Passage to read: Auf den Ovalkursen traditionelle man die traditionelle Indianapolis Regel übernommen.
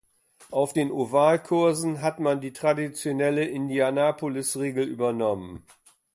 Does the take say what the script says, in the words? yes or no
no